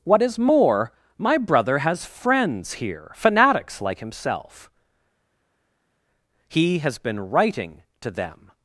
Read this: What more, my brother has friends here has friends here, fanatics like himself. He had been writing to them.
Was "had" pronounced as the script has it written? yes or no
no